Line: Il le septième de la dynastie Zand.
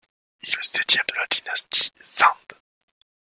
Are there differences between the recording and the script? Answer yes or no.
no